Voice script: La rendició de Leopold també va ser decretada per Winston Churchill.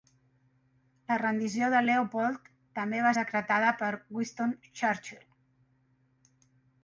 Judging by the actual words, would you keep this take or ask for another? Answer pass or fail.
fail